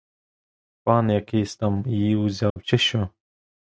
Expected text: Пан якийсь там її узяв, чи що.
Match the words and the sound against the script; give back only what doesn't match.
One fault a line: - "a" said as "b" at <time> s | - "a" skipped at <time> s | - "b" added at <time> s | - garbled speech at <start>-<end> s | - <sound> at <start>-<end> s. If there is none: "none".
- dropout at 2.5-2.6 s